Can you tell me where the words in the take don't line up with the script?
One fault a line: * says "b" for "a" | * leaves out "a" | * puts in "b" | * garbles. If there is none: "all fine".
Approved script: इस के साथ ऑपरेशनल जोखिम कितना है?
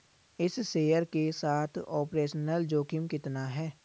* puts in "शेयर"